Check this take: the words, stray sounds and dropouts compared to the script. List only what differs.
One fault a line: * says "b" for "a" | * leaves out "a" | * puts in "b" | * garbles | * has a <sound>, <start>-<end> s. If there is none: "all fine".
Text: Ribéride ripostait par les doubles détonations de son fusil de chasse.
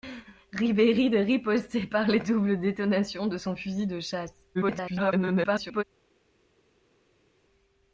* garbles